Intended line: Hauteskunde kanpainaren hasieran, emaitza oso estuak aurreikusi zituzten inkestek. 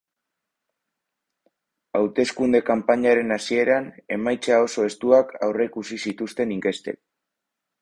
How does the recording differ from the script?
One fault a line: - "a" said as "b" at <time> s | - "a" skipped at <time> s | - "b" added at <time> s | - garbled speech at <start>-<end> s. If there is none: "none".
none